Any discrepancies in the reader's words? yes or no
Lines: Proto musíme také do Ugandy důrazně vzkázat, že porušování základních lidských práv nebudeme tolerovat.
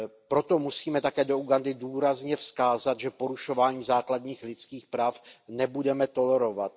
no